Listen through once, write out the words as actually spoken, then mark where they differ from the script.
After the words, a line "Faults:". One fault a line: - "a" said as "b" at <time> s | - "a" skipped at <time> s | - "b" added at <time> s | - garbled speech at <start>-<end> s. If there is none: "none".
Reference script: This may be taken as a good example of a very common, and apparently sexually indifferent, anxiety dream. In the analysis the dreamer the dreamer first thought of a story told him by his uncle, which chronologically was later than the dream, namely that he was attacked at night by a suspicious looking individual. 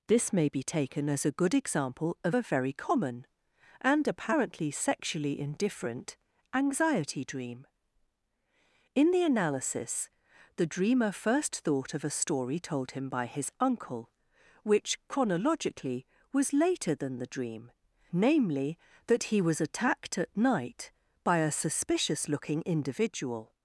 This may be taken as a good example of a very common, and apparently sexually indifferent, anxiety dream. In the analysis the dreamer first thought of a story told him by his uncle, which chronologically was later than the dream, namely that he was attacked at night by a suspicious looking individual.
Faults:
- "the dreamer" skipped at 11.1 s